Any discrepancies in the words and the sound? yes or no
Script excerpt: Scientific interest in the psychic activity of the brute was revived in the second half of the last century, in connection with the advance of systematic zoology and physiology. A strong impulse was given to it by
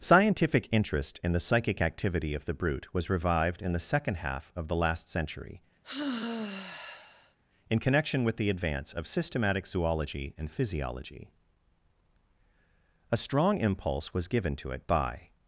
yes